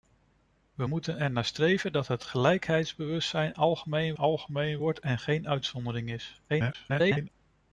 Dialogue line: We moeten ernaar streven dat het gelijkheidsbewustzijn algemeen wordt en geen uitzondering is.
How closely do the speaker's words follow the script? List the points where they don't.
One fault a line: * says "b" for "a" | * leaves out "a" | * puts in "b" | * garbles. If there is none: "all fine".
* puts in "algemeen"
* garbles